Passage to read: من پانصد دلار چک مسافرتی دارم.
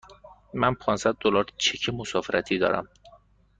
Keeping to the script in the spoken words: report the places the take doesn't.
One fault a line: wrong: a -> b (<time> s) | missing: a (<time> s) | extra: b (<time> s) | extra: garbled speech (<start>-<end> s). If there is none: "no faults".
no faults